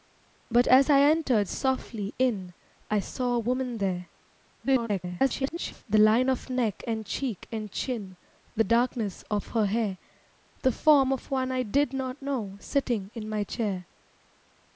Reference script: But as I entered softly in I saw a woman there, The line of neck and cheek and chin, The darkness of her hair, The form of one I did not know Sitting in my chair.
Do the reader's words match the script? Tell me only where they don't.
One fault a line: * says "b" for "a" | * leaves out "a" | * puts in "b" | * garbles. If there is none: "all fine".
* garbles